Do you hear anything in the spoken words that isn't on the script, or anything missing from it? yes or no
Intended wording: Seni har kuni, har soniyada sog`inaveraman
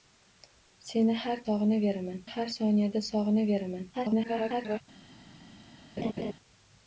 yes